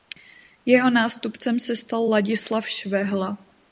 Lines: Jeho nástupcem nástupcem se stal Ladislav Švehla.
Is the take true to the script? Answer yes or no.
no